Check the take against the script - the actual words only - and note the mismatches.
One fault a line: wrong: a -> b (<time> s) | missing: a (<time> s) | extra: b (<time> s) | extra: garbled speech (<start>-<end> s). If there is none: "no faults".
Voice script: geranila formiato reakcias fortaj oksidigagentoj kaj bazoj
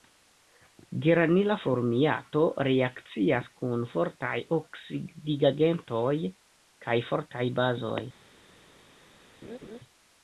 extra: kun (3.6 s)
extra: fortaj (7.1 s)